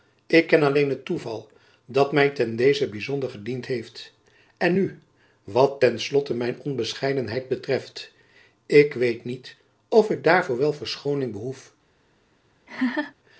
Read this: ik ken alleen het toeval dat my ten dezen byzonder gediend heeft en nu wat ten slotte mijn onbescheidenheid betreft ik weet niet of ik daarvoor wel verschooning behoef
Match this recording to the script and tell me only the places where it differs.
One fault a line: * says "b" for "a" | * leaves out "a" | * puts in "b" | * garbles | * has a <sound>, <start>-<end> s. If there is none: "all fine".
* has a laugh, 12.7-13.1 s